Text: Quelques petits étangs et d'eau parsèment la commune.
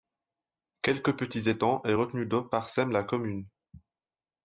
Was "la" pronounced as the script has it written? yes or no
yes